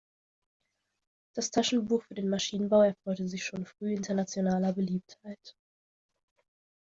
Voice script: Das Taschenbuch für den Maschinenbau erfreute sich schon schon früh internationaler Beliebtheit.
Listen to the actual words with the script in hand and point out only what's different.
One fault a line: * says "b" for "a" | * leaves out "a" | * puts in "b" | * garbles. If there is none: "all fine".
* leaves out "schon"